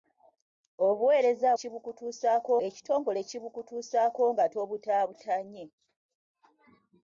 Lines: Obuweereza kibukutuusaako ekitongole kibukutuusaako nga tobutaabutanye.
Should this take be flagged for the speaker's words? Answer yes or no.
no